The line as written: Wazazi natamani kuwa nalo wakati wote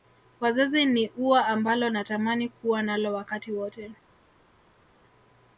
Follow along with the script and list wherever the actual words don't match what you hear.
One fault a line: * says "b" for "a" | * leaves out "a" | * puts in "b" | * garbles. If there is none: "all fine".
* puts in "ni ua ambalo"